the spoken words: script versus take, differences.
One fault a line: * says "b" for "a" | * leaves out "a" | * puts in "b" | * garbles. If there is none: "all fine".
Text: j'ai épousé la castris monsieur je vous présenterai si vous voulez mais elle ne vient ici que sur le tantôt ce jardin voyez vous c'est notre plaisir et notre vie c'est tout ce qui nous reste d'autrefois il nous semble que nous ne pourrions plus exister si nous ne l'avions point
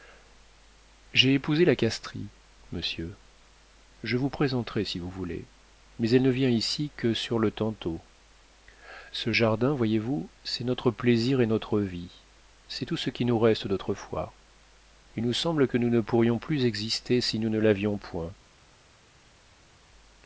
all fine